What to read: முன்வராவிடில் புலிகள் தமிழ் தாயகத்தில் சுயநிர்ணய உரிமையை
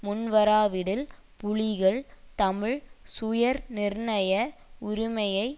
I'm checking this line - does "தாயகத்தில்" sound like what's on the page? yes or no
no